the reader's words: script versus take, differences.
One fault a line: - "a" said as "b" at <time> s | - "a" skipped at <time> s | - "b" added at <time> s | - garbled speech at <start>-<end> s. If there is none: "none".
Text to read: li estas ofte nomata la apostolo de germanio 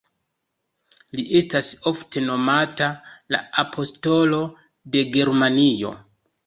none